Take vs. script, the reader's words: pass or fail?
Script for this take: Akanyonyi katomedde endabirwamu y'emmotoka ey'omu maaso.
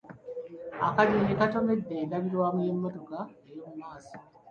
pass